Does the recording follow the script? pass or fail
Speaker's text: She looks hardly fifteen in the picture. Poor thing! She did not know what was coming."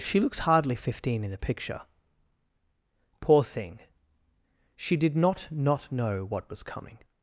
fail